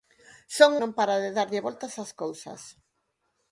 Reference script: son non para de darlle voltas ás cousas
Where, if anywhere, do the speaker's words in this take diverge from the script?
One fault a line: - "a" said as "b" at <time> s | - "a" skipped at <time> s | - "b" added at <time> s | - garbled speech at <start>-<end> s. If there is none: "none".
none